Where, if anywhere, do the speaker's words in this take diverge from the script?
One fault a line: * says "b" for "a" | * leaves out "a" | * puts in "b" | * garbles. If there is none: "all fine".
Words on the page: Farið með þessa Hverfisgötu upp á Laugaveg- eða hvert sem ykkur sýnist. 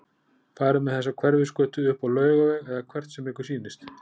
all fine